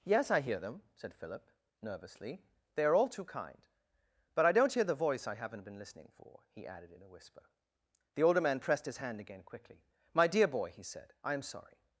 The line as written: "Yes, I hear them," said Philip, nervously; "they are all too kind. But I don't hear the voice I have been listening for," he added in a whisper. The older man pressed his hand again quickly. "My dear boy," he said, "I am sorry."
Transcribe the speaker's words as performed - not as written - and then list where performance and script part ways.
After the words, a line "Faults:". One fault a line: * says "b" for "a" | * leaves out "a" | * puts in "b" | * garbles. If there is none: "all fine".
"Yes, I hear them," said Philip, nervously; "they are all too kind. But I don't hear the voice I haven't been listening for," he added in a whisper. The older man pressed his hand again quickly. "My dear boy," he said, "I am sorry."
Faults:
* says "haven't" for "have"